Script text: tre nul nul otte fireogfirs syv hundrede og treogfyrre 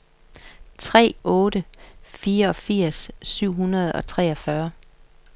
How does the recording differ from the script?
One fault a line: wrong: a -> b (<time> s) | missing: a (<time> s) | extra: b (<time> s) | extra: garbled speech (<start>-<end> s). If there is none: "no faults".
missing: nul nul (1.1 s)